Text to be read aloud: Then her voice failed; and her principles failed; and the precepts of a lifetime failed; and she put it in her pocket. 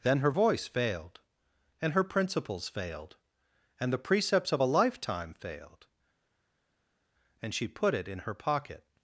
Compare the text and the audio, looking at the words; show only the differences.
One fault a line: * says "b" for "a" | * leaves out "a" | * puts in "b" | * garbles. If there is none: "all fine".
all fine